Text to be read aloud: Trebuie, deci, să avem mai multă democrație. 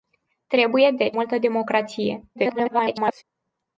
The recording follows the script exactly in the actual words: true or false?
false